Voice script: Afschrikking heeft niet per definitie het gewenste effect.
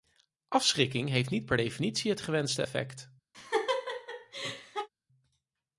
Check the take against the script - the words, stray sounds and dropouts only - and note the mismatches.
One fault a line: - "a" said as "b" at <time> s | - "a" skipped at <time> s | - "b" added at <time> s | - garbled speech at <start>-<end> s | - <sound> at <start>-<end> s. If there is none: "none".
- laugh at 3.3-4.9 s